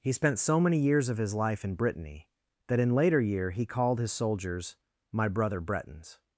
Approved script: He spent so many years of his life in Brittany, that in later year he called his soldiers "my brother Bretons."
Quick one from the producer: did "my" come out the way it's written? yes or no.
yes